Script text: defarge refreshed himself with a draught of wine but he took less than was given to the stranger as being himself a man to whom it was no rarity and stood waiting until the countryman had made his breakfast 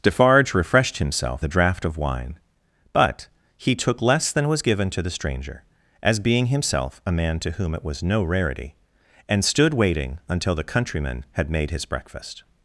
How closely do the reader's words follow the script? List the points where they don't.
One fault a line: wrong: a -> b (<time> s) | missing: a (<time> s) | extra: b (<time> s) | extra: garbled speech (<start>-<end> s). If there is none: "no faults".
missing: with (1.4 s)